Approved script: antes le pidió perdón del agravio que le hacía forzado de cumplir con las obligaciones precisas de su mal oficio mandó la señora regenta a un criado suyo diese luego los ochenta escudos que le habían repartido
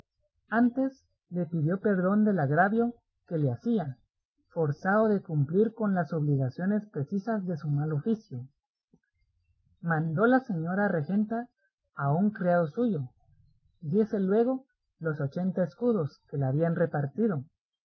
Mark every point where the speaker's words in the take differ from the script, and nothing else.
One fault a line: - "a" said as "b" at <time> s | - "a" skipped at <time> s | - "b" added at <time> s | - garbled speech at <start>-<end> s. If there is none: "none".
none